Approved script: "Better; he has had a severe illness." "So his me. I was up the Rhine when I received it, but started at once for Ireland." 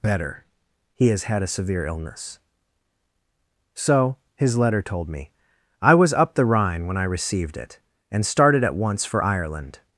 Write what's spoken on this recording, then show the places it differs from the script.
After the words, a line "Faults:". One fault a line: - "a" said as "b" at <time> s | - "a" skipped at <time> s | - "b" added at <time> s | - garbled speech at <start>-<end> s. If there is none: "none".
"Better; he has had a severe illness." "So his letter told me. I was up the Rhine when I received it, and started at once for Ireland."
Faults:
- "letter told" added at 4.6 s
- "but" said as "and" at 8.1 s